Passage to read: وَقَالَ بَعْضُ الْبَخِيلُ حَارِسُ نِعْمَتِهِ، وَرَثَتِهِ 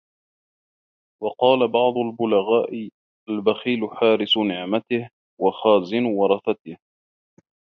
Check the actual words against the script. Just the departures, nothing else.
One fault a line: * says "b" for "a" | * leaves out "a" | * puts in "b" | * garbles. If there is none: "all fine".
* puts in "الْبُلَغَاءِ"
* puts in "وَخَازِنُ"